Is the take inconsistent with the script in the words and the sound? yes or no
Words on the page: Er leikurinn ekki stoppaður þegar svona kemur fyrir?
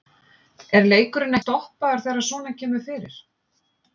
yes